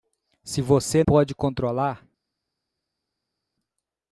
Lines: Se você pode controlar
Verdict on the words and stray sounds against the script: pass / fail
pass